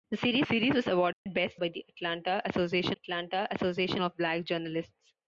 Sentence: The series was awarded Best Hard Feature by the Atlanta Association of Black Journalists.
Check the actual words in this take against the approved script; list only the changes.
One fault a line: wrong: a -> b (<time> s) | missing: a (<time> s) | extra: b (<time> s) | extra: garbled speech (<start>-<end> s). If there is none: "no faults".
extra: series (0.4 s)
wrong: Hard Feature by the -> By the Atlanta Association (1.5 s)